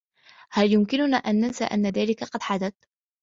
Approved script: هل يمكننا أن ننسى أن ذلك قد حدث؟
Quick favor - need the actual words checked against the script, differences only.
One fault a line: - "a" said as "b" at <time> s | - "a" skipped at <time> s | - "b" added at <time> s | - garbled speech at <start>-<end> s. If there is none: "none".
none